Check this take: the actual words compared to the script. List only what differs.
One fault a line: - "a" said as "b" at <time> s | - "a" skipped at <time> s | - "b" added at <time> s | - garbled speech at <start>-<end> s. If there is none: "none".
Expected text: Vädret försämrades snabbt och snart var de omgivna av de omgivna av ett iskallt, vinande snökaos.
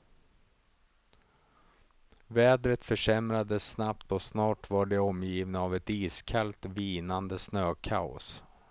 - "de omgivna av" skipped at 5.7 s